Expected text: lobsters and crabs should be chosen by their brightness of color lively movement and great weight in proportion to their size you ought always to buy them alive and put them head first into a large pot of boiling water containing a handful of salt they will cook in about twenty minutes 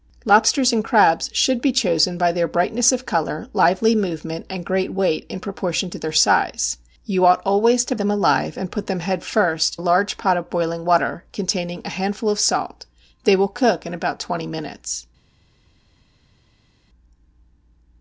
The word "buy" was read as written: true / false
false